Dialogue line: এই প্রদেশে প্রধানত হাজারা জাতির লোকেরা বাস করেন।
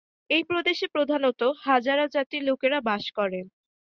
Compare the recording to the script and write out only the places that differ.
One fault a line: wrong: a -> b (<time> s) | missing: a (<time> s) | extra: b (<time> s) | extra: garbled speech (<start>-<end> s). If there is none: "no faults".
no faults